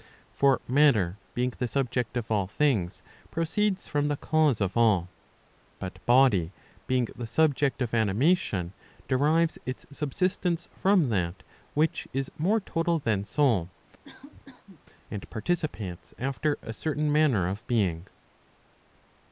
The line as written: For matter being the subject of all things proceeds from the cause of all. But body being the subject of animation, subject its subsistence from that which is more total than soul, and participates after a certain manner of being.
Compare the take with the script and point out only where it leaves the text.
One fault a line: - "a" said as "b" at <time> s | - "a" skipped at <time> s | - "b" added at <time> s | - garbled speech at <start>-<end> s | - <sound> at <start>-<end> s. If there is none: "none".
- "subject" said as "derives" at 9.1 s
- cough at 14.0-14.8 s